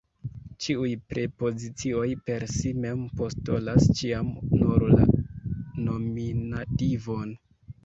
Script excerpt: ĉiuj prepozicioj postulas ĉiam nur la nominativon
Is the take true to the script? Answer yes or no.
no